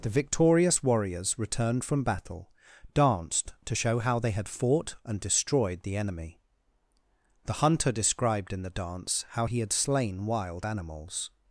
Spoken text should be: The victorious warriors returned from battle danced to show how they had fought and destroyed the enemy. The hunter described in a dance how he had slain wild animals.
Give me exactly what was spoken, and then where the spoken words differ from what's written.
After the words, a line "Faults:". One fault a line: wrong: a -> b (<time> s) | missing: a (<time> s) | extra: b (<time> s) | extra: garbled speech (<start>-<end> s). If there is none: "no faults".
The victorious warriors returned from battle danced to show how they had fought and destroyed the enemy. The hunter described in the dance how he had slain wild animals.
Faults:
wrong: a -> the (8.6 s)